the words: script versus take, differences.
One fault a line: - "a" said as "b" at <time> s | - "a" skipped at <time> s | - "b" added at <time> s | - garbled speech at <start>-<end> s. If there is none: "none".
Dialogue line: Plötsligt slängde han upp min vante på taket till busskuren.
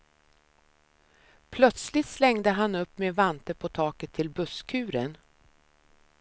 none